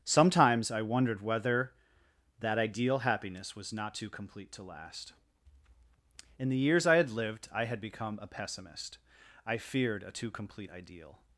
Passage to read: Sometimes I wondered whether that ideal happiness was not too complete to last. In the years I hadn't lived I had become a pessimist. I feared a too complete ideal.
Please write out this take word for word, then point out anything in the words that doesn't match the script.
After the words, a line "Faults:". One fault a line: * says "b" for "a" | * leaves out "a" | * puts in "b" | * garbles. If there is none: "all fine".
Sometimes I wondered whether that ideal happiness was not too complete to last. In the years I had lived I had become a pessimist. I feared a too complete ideal.
Faults:
* says "had" for "hadn't"